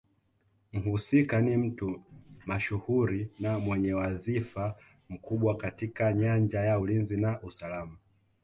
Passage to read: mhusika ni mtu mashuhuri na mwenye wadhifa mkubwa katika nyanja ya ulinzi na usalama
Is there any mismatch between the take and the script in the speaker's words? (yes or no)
no